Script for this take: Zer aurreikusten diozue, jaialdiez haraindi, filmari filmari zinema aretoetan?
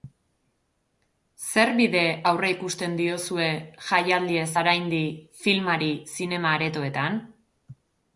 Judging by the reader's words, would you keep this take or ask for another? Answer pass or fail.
fail